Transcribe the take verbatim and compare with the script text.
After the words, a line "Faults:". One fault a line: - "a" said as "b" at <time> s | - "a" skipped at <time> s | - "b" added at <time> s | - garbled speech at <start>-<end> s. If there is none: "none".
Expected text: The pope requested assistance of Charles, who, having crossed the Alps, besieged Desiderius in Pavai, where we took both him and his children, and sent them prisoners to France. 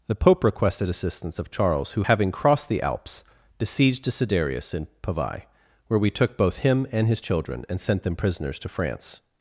The pope requested assistance of Charles, who, having crossed the Alps, besieged Desiderius in Pavai, where we took both him and his children, and sent them prisoners to France.
Faults:
none